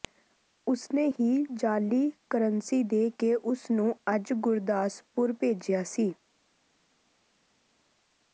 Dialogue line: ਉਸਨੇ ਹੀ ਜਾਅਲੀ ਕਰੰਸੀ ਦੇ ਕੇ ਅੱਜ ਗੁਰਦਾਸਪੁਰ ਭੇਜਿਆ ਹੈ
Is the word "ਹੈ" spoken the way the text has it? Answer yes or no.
no